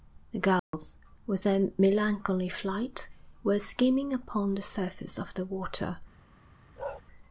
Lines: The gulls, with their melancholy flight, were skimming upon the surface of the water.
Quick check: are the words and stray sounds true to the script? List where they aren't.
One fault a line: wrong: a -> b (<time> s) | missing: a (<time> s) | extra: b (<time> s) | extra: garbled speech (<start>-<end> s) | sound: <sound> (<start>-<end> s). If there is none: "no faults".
sound: dropout (0.6-0.7 s)
sound: bark (6.8-7.0 s)